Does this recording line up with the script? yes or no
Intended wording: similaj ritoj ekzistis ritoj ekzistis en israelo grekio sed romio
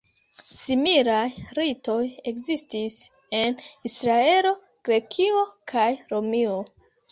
no